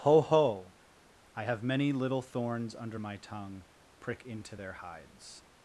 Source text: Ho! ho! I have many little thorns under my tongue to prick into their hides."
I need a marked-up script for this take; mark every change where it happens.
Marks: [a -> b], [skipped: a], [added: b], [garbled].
Ho! ho! I have many little thorns under my tongue [skipped: to] prick into their hides."